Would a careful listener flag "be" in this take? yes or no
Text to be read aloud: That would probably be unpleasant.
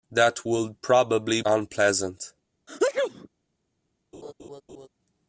yes